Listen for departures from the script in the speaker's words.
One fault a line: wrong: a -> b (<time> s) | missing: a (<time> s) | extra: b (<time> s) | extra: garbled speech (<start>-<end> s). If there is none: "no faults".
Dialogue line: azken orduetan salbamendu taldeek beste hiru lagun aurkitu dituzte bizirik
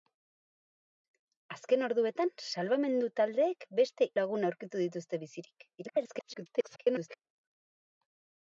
missing: hiru (4.1 s)
extra: garbled speech (5.8-7.2 s)